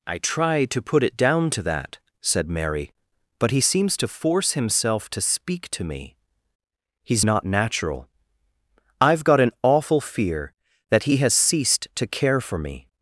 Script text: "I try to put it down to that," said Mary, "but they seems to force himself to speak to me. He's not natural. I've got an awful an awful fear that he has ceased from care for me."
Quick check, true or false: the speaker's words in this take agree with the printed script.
false